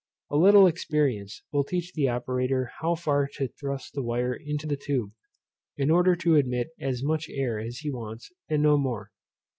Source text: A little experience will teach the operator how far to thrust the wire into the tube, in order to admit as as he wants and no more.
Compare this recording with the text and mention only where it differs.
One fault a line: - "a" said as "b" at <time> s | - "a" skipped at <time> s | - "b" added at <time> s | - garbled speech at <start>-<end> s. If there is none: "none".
- "much air" added at 7.0 s